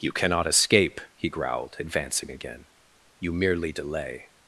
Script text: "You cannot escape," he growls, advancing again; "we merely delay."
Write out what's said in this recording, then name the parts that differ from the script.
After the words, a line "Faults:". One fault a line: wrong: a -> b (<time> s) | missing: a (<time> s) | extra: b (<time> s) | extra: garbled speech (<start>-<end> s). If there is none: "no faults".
"You cannot escape," he growled, advancing again; "you merely delay."
Faults:
wrong: growls -> growled (1.3 s)
wrong: we -> you (3.2 s)